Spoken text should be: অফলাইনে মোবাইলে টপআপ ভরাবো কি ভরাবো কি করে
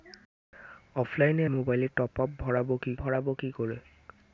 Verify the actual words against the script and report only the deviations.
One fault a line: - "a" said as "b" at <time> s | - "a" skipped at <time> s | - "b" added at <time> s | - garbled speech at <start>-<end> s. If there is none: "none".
none